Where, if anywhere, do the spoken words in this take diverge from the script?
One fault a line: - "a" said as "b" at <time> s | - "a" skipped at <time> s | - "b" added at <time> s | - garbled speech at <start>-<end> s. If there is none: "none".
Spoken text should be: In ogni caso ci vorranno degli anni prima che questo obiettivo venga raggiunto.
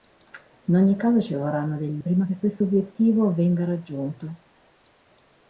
- "anni" skipped at 2.0 s